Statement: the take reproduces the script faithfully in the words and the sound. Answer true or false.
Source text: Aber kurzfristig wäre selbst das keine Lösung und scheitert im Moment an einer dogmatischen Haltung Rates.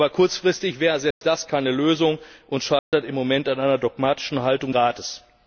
false